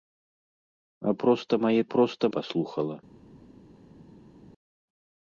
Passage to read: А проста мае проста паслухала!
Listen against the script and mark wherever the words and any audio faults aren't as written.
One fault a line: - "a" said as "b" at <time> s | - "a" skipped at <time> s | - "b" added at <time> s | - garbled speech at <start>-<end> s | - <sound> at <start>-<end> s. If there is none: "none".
none